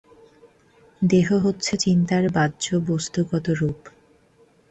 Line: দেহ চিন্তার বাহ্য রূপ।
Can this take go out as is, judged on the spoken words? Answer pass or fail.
fail